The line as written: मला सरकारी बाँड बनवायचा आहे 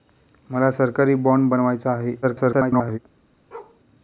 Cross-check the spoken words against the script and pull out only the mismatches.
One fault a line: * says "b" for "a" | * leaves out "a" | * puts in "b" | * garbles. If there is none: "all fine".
* garbles